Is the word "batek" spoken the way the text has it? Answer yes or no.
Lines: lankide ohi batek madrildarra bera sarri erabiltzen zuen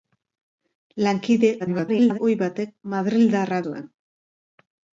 yes